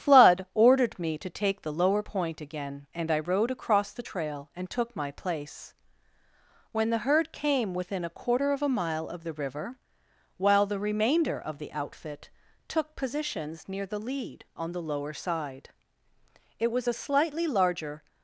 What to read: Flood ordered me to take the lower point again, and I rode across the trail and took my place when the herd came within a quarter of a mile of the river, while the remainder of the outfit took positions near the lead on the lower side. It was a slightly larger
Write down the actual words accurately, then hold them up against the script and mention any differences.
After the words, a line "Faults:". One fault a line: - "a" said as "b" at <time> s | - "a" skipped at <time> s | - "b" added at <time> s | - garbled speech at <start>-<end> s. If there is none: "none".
Flood ordered me to take the lower point again, and I rode across the trail and took my place when the herd came within a quarter of a mile of the river, while the remainder of the outfit took positions near the lead on the lower side. It was a slightly larger
Faults:
none